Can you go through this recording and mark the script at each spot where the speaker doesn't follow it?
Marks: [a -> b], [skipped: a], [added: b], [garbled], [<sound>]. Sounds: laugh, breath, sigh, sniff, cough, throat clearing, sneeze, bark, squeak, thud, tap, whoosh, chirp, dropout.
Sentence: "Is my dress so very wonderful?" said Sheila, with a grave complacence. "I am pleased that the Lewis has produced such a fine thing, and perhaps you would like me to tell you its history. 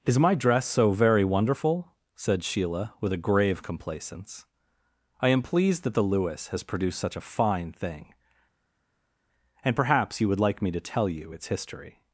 "Is my dress so very wonderful?" said Sheila, with a grave complacence. "I am pleased that the Lewis has produced such a fine thing, and perhaps you would like me to tell you its history.